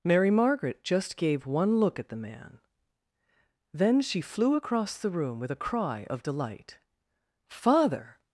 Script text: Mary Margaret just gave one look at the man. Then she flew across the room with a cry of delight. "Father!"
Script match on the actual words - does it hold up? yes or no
yes